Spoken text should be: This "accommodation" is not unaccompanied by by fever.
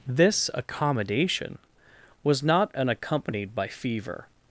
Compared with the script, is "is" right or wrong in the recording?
wrong